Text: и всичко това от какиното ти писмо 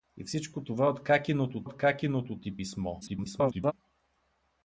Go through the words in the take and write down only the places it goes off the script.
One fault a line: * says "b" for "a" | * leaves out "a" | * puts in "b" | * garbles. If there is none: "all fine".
* puts in "от какиното"
* garbles